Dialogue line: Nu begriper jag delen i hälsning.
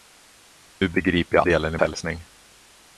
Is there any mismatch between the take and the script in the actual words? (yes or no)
no